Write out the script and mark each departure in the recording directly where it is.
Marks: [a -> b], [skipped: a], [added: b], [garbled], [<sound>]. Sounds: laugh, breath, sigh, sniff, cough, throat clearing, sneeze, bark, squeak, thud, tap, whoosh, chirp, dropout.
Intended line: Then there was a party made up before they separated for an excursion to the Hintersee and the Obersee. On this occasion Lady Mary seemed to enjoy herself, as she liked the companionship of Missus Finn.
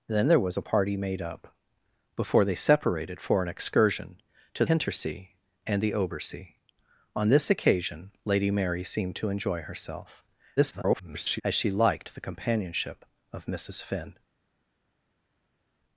Then there was a party made up before they separated for an excursion to [skipped: the] Hintersee and the Obersee. On this occasion Lady Mary seemed to enjoy herself, [garbled] as she liked the companionship of Missus Finn.